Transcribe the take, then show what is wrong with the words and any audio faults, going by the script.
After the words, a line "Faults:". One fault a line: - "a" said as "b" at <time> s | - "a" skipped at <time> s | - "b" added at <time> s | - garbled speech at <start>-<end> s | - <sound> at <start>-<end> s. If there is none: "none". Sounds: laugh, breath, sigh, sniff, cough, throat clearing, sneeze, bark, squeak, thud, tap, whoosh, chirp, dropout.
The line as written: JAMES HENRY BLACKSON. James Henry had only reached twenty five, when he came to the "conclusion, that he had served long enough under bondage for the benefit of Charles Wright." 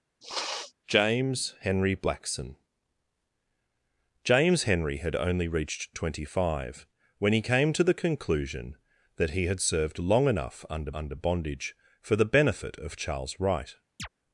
JAMES HENRY BLACKSON. James Henry had only reached twenty five, when he came to the "conclusion, that he had served long enough under under bondage for the benefit of Charles Wright."
Faults:
- sniff at 0.2-0.7 s
- "under" added at 10.9 s
- chirp at 14.0-14.1 s